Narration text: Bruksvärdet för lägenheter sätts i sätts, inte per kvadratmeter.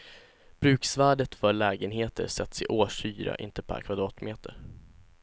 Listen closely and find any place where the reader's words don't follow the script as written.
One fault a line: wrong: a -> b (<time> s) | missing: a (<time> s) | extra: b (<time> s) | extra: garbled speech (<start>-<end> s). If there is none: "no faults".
wrong: sätts -> årshyra (2.6 s)